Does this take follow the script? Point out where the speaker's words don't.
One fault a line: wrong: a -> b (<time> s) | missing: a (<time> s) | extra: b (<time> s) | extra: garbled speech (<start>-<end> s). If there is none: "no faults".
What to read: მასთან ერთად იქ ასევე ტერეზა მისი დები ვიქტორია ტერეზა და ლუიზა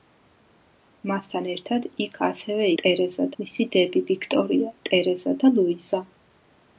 no faults